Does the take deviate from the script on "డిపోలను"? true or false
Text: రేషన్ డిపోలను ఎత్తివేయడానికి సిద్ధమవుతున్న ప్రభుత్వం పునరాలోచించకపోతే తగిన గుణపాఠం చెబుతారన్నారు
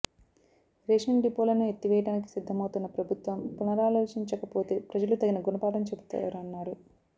false